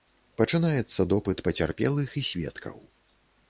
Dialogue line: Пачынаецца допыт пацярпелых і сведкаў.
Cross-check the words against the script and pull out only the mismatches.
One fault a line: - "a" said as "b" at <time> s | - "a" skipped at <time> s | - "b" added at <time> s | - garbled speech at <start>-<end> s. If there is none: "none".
none